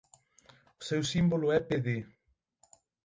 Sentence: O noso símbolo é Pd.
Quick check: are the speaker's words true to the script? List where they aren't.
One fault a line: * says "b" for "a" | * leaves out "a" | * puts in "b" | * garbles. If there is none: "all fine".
* says "seu" for "noso"